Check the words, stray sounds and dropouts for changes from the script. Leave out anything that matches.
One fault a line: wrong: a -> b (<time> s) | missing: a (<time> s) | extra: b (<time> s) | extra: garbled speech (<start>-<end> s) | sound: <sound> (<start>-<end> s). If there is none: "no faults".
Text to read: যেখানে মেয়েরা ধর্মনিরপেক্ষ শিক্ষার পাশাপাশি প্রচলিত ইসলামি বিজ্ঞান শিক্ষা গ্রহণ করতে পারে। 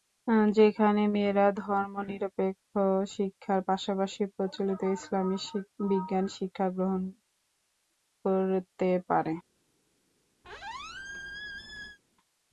sound: squeak (10.4-12.0 s)